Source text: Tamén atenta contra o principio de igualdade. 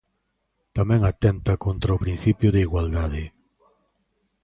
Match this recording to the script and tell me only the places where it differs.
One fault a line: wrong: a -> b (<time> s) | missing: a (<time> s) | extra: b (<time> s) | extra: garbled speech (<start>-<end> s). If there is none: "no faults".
no faults